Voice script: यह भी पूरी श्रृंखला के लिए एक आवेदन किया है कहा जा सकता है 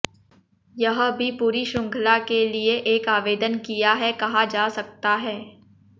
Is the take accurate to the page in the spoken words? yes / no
yes